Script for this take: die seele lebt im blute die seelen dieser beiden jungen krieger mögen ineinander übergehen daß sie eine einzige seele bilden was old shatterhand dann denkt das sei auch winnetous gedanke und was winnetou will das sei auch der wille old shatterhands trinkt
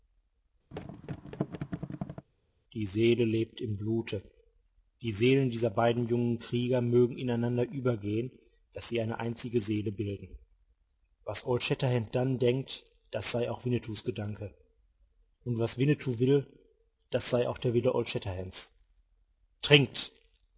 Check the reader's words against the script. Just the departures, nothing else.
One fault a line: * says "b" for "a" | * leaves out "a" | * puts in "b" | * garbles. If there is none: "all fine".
all fine